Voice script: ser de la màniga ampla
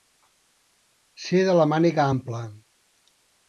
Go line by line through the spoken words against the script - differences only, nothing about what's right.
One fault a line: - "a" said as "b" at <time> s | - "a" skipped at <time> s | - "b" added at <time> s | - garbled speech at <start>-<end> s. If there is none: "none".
none